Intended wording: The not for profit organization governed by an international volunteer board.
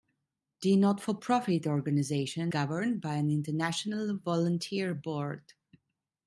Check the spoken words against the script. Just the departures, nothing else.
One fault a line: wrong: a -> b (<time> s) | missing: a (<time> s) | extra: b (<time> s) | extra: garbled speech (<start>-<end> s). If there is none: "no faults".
no faults